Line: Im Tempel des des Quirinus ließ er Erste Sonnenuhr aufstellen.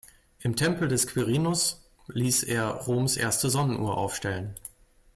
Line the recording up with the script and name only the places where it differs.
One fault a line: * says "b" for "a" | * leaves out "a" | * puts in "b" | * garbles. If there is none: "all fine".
* leaves out "des"
* puts in "Roms"